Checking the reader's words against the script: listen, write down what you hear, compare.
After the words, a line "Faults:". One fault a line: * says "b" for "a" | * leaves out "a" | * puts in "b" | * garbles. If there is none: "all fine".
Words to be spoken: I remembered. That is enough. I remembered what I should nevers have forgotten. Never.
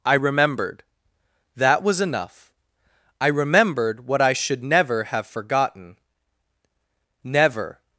I remembered. That was enough. I remembered what I should never have forgotten. Never.
Faults:
* says "was" for "is"
* says "never" for "nevers"